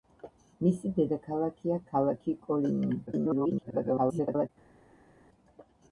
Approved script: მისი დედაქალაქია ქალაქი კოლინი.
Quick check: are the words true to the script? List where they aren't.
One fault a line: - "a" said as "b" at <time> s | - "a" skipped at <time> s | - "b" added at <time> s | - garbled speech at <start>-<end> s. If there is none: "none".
- garbled speech at 3.1-4.5 s